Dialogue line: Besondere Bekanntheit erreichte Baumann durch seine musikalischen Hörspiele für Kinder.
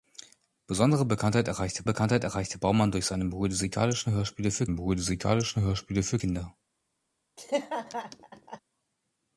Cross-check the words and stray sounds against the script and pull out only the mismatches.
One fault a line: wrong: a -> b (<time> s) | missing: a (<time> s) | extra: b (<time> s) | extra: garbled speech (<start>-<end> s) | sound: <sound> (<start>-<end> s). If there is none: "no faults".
extra: Bekanntheit erreichte (1.8 s)
extra: musikalischen Hörspiele für (4.7 s)
sound: laugh (7.4-8.6 s)